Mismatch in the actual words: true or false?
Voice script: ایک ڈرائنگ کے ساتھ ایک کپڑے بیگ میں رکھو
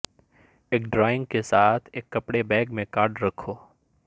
true